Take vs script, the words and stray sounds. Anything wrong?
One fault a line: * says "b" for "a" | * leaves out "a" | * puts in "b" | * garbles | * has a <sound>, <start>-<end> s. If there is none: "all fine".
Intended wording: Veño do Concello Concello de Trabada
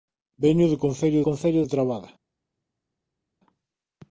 all fine